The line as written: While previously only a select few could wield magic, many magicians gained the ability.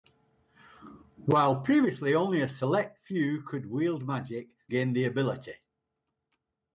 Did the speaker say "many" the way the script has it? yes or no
no